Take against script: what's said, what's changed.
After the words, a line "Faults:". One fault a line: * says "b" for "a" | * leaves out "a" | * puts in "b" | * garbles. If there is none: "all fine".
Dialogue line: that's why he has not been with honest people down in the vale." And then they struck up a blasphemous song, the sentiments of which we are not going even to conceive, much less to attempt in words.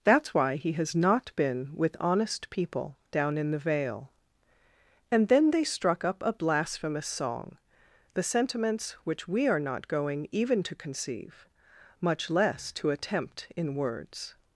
that's why he has not been with honest people down in the vale." And then they struck up a blasphemous song, the sentiments which we are not going even to conceive, much less to attempt in words.
Faults:
* leaves out "of"